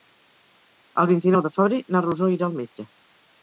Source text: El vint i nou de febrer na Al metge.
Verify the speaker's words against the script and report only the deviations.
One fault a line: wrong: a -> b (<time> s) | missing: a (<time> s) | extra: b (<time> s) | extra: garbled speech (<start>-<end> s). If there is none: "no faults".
extra: Rosó irà (2.1 s)